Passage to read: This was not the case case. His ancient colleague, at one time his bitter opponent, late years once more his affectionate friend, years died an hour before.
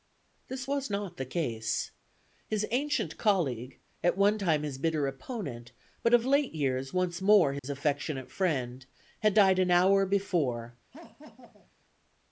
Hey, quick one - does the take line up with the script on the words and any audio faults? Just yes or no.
no